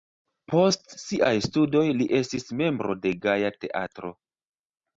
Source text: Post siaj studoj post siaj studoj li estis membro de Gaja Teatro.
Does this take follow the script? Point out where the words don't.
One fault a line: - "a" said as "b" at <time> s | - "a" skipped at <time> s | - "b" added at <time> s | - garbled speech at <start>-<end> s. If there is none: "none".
- "post siaj studoj" skipped at 1.9 s